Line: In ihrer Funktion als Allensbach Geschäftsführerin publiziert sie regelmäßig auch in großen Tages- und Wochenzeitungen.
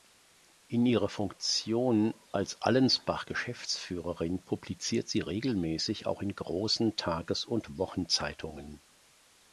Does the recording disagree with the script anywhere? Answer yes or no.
no